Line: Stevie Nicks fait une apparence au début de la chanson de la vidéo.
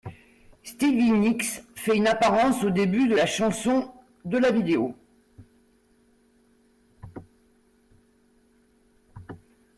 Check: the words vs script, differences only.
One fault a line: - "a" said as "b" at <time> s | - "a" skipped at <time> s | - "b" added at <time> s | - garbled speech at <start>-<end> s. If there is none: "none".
none